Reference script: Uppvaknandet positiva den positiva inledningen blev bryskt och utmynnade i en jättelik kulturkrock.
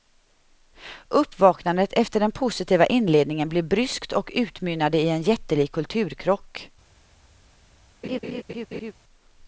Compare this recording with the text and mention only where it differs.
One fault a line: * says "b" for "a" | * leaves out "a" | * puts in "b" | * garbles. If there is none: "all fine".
* says "efter" for "positiva"